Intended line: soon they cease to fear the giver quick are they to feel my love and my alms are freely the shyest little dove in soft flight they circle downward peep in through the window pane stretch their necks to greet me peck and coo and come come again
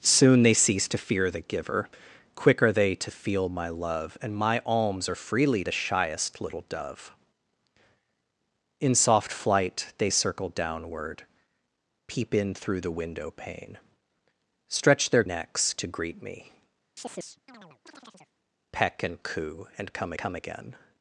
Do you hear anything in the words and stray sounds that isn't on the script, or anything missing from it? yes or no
yes